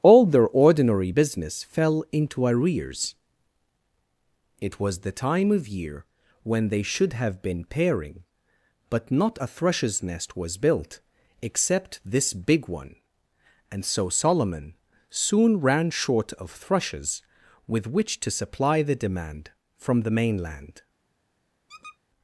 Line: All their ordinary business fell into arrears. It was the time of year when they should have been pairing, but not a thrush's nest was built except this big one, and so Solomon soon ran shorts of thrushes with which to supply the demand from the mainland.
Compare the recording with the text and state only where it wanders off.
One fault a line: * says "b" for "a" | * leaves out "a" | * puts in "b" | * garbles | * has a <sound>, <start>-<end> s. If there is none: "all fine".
* says "short" for "shorts"
* has a squeak, 21.7-22.0 s